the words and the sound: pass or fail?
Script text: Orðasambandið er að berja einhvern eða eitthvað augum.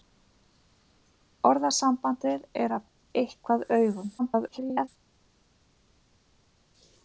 fail